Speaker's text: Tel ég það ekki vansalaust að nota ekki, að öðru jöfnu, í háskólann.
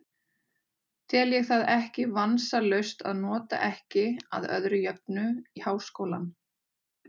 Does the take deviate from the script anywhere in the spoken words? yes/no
no